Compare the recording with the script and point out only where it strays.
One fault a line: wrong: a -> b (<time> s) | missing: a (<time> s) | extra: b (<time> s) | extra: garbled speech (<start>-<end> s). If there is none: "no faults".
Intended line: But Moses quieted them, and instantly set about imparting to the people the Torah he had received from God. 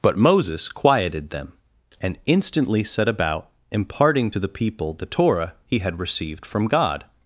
no faults